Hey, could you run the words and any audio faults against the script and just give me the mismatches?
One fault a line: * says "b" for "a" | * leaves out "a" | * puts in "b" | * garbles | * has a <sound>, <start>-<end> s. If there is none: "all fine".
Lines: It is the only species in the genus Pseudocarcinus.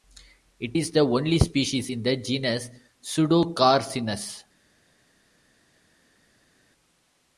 all fine